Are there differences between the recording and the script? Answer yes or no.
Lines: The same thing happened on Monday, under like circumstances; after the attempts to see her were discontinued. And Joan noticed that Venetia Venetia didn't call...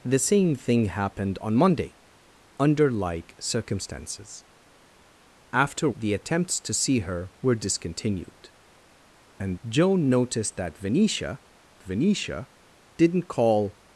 no